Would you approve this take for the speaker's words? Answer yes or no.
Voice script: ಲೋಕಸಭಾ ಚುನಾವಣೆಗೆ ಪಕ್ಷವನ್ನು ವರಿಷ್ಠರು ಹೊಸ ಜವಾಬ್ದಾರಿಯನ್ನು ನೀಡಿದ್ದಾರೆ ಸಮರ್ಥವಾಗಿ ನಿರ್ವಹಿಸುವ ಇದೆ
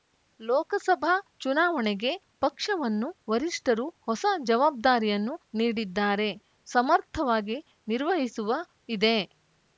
yes